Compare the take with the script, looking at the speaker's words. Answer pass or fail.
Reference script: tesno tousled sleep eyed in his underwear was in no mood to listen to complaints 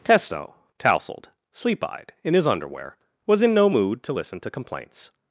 pass